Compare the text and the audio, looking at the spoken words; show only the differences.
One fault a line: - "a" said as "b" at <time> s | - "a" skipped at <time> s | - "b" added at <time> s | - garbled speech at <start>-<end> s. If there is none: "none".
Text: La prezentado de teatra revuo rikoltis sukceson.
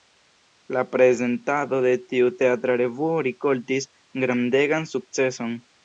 - "tiu" added at 2.1 s
- "grandegan" added at 4.2 s